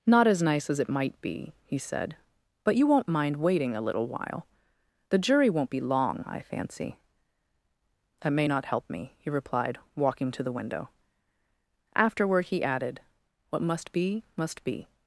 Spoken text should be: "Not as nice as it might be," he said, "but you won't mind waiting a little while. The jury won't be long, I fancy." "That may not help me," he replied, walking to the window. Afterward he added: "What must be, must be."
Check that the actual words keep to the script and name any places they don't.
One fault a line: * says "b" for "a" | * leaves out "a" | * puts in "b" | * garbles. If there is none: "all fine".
all fine